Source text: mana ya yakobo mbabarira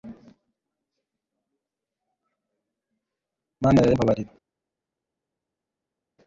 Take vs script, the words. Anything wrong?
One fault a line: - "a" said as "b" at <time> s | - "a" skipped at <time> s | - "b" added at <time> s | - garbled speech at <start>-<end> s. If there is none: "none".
- "yakobo" skipped at 3.9 s